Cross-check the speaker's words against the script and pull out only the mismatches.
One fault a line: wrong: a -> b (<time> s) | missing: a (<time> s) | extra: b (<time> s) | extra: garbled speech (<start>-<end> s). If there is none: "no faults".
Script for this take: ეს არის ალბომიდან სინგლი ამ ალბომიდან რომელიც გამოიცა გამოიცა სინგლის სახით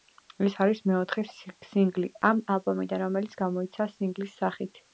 wrong: ალბომიდან -> მეოთხე (0.9 s)
missing: გამოიცა (3.9 s)